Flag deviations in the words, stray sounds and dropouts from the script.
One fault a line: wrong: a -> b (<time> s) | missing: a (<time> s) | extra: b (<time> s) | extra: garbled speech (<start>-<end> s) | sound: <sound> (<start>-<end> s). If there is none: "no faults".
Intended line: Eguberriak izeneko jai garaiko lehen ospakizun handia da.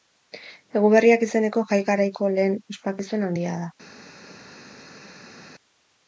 no faults